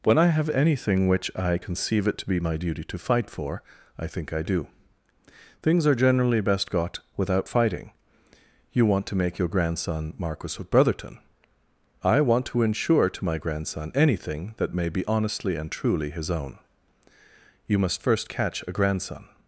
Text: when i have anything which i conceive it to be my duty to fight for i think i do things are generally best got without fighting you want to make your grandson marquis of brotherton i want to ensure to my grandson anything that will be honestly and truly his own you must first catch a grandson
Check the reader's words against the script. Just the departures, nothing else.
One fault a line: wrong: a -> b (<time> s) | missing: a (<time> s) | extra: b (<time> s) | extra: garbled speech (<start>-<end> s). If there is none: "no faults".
wrong: will -> may (14.7 s)